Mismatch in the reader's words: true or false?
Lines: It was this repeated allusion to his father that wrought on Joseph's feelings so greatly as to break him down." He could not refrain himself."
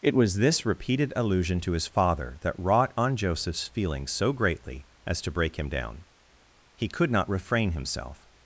false